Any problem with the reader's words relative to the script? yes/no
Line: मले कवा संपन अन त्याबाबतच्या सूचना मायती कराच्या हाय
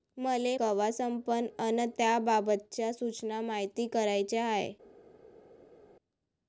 no